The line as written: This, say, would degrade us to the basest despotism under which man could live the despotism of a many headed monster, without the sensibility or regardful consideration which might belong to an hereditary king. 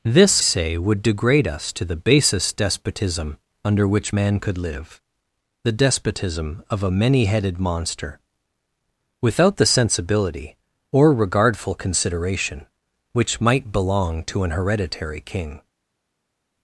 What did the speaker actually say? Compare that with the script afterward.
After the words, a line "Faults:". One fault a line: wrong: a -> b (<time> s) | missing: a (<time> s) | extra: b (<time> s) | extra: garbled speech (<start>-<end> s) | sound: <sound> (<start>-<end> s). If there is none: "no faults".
This, say, would degrade us to the basest despotism under which man could live the despotism of a many headed monster, without the sensibility or regardful consideration which might belong to an hereditary king.
Faults:
no faults